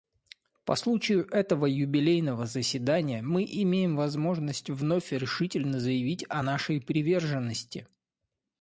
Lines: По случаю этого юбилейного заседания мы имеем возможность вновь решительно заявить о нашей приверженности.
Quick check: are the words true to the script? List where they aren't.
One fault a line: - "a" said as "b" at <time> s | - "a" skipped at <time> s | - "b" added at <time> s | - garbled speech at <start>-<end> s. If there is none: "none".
none